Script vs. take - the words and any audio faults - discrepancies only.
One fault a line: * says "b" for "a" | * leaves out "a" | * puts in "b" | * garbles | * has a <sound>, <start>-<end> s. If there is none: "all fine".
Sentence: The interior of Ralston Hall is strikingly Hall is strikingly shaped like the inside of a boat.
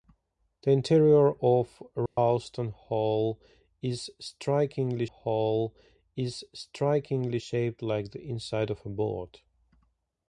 * has a dropout, 2.1-2.2 s